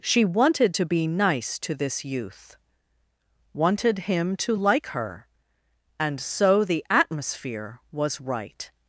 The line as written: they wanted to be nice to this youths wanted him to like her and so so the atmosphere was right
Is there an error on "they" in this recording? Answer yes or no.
yes